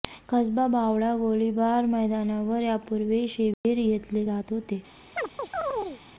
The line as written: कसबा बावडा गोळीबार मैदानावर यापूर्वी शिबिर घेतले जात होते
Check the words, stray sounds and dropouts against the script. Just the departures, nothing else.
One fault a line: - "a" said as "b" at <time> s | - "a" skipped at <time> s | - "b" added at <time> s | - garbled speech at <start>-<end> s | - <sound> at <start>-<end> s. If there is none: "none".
- dropout at 3.5-3.6 s
- chirp at 5.2-6.0 s